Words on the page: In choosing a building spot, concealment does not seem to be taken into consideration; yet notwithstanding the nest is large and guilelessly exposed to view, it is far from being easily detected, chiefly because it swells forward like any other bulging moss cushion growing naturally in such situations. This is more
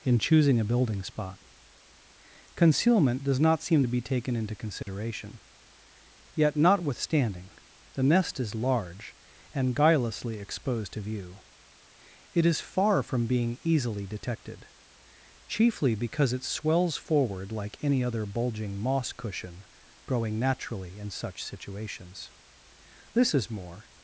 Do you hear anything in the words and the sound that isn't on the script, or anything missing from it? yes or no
yes